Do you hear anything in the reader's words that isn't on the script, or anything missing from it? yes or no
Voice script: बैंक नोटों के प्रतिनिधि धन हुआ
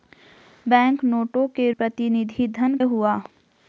no